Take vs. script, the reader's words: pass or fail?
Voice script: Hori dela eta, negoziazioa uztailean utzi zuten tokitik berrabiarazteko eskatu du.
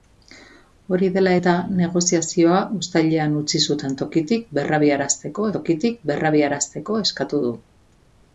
fail